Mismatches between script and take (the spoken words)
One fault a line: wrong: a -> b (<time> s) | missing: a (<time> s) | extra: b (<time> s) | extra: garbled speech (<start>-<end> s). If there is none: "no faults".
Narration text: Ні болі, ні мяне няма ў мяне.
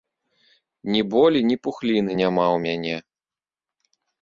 wrong: мяне -> пухліны (1.7 s)